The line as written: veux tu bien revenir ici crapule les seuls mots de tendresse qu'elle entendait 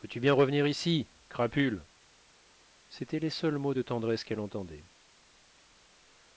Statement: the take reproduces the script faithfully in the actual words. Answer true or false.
false